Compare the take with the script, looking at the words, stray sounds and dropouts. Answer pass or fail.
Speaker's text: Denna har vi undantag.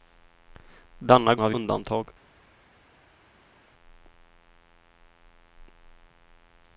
pass